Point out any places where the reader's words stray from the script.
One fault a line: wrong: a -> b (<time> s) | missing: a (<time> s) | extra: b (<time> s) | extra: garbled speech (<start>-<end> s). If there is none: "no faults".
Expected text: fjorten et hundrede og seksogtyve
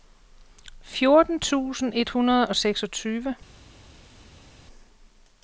extra: tusind (1.4 s)